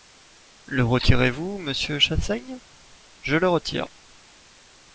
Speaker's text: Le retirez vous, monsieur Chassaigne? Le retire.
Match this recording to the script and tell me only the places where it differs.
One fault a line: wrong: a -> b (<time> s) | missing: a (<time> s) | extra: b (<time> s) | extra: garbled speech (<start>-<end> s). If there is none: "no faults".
extra: Je (3.2 s)